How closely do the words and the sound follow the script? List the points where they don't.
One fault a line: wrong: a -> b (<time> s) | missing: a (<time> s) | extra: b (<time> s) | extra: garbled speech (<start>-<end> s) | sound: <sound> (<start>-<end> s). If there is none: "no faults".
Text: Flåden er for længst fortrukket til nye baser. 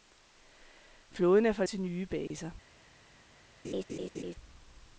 missing: længst fortrukket (1.6 s)
sound: dropout (2.3-2.3 s)
sound: laugh (3.6-4.4 s)